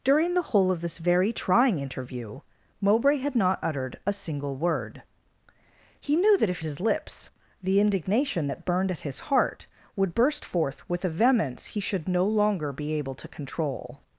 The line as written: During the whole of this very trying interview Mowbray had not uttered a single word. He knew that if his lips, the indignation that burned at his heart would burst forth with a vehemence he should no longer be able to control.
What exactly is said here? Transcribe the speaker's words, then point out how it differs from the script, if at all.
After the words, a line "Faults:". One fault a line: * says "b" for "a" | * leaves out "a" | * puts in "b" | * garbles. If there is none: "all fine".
During the whole of this very trying interview Mowbray had not uttered a single word. He knew that if his lips, the indignation that burned at his heart would burst forth with a vehemence he should no longer be able to control.
Faults:
all fine